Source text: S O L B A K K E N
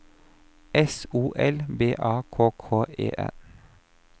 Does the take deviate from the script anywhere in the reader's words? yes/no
no